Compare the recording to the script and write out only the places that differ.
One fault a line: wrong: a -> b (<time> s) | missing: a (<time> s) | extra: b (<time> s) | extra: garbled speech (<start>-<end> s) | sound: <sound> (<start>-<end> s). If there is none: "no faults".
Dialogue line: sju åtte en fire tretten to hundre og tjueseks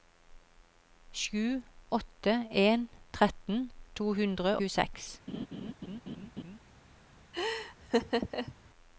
missing: fire (2.9 s)
missing: og (4.6 s)
sound: laugh (5.3-6.6 s)
sound: laugh (7.3-8.6 s)